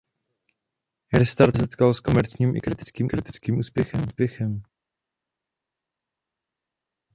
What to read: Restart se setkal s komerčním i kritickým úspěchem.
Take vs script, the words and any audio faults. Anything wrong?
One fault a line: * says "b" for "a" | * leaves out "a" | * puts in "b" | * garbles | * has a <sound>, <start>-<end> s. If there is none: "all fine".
* leaves out "se"
* puts in "kritickým"